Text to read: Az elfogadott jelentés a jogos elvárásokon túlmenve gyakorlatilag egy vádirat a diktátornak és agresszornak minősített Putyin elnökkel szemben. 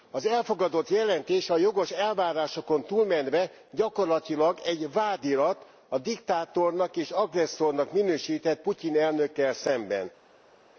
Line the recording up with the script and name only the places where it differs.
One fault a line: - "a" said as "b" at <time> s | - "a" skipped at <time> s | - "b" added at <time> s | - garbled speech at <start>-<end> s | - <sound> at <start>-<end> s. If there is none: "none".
none